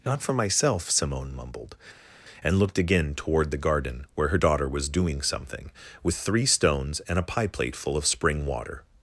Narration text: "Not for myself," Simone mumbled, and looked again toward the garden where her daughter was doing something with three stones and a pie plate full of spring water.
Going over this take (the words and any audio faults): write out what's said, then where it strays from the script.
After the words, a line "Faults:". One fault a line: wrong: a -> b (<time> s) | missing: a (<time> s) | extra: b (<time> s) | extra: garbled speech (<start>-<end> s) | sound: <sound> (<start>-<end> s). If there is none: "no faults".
"Not for myself," Simone mumbled, and looked again toward the garden where her daughter was doing something with three stones and a pie plate full of spring water.
Faults:
no faults